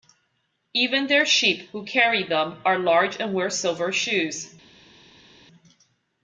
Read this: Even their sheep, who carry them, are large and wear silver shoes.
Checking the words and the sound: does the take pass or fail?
pass